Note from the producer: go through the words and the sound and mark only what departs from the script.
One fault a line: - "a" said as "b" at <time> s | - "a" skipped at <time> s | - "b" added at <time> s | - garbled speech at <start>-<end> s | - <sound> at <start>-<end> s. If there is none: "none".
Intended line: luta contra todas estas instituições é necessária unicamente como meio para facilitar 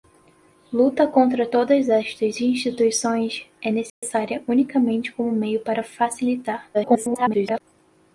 - dropout at 3.9-4.0 s
- garbled speech at 6.7-7.6 s